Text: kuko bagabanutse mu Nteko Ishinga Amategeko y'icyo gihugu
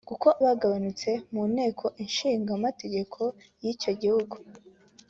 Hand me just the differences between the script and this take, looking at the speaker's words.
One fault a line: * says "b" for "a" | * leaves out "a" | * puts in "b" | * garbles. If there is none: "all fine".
all fine